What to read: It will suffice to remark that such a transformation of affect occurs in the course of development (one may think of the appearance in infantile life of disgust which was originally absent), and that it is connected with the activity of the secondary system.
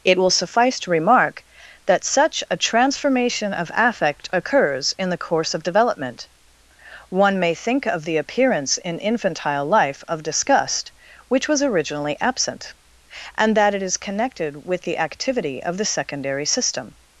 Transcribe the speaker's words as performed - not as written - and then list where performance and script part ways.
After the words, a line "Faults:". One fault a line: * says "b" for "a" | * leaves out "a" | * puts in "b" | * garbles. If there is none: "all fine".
It will suffice to remark that such a transformation of affect occurs in the course of development (one may think of the appearance in infantile life of disgust which was originally absent), and that it is connected with the activity of the secondary system.
Faults:
all fine